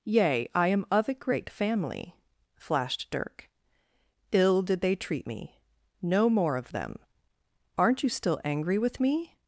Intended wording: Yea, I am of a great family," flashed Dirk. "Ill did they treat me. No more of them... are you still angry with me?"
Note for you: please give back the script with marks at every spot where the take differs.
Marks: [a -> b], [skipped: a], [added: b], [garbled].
Yea, I am of a great family," flashed Dirk. "Ill did they treat me. No more of them... [are -> aren't] you still angry with me?"